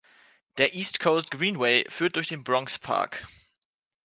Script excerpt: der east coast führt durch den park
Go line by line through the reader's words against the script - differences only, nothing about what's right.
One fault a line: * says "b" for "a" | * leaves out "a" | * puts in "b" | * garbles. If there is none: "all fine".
* puts in "greenway"
* puts in "bronx"